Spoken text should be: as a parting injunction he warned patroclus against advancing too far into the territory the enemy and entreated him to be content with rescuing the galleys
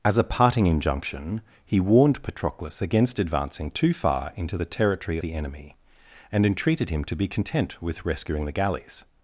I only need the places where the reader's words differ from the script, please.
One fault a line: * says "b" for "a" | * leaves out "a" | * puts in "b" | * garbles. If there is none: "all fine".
all fine